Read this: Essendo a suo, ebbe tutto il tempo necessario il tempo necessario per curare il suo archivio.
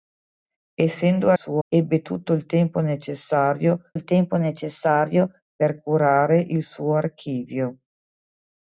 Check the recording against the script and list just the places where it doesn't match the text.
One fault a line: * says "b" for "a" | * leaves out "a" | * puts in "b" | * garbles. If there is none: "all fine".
all fine